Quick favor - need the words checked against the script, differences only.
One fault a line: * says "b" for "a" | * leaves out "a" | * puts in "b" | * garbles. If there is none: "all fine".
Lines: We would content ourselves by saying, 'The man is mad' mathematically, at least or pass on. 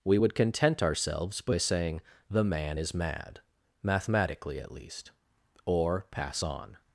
all fine